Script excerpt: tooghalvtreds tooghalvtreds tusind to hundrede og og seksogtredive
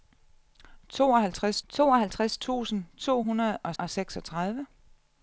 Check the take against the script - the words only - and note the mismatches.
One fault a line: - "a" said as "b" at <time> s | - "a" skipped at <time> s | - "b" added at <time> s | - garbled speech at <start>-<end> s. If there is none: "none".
none